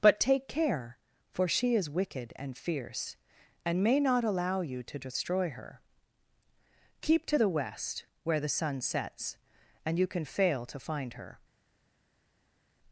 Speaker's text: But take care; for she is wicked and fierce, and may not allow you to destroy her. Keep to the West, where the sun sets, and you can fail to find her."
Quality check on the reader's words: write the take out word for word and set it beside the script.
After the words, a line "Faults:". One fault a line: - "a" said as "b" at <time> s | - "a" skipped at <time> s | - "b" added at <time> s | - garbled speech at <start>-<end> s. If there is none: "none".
But take care; for she is wicked and fierce, and may not allow you to destroy her. Keep to the West, where the sun sets, and you can fail to find her."
Faults:
none